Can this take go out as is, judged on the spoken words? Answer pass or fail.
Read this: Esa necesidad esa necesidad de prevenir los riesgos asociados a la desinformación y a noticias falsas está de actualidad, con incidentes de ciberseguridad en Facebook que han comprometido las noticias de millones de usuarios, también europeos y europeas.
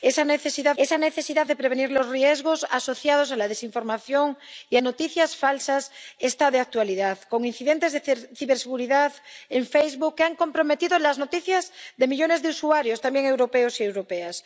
pass